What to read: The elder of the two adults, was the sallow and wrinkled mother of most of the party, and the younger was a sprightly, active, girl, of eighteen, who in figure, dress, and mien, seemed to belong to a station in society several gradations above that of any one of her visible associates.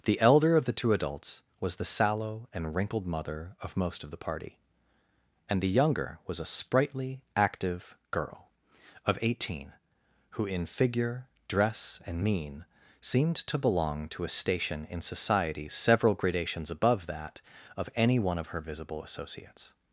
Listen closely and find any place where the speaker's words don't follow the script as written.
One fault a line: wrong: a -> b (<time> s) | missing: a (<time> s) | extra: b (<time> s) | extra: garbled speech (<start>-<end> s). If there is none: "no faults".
no faults